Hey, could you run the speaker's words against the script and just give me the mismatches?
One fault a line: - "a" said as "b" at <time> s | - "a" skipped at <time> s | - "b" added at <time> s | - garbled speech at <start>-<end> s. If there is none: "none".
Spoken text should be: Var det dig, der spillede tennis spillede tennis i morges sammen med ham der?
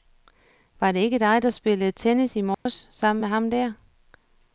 - "ikke" added at 1.0 s
- "spillede tennis" skipped at 2.4 s